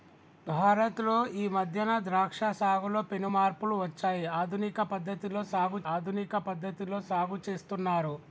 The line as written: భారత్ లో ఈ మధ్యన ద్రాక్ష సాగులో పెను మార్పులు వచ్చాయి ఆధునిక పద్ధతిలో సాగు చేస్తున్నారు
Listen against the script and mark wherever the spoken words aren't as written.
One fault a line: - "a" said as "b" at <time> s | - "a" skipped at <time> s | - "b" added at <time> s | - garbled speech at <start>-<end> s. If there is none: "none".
- "ఆధునిక పద్ధతిలో సాగు" added at 5.9 s